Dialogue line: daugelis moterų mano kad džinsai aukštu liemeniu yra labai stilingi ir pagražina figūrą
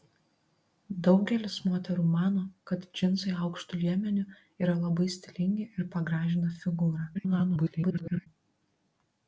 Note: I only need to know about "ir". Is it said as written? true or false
true